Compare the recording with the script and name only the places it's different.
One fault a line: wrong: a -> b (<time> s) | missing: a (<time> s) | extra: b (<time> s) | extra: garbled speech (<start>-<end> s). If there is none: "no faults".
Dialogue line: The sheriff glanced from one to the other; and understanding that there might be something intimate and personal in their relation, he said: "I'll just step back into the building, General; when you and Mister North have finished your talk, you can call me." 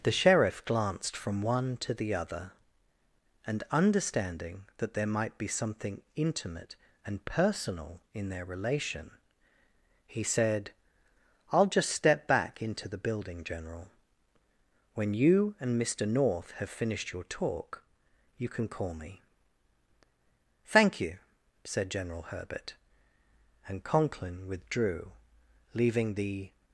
extra: Thank you said General Herbert and Conklin withdrew leaving the (20.6 s)